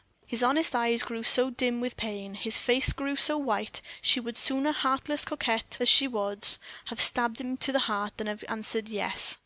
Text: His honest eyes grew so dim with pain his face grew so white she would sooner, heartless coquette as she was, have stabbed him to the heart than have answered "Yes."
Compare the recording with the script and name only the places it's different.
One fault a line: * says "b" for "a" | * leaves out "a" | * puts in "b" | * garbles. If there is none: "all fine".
all fine